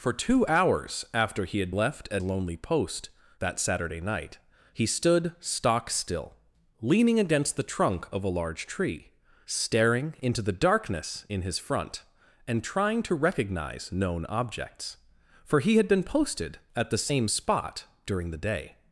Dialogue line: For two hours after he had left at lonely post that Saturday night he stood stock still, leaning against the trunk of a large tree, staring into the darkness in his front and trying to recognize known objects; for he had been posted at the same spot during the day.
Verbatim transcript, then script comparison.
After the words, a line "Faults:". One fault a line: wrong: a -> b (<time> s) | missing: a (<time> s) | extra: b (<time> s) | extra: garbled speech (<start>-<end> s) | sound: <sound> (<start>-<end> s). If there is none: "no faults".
For two hours after he had left at lonely post that Saturday night he stood stock still, leaning against the trunk of a large tree, staring into the darkness in his front and trying to recognize known objects; for he had been posted at the same spot during the day.
Faults:
no faults